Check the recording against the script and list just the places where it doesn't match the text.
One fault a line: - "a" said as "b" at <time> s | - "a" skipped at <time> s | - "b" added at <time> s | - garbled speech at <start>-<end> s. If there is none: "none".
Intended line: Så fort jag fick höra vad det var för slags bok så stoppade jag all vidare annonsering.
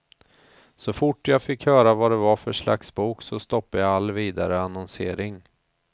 none